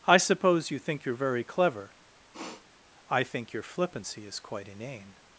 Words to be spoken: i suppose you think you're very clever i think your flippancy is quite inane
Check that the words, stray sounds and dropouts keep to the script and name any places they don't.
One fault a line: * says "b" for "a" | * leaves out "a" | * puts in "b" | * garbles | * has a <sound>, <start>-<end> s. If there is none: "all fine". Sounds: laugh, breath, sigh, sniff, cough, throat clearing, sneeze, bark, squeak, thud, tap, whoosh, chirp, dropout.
* has a sniff, 2.3-2.7 s